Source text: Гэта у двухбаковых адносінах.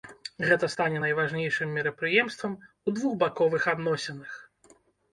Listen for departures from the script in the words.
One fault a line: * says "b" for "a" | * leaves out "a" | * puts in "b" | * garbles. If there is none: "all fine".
* puts in "стане найважнейшым мерапрыемствам"